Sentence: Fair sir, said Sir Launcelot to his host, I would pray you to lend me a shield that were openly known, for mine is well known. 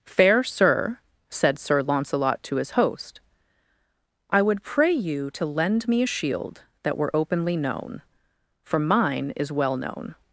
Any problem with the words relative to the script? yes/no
no